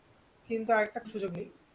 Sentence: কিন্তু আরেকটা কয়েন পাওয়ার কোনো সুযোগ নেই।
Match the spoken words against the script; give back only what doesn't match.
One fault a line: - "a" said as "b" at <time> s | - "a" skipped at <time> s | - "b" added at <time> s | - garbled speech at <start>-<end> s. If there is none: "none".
- "কয়েন পাওয়ার কোনো" skipped at 1.0 s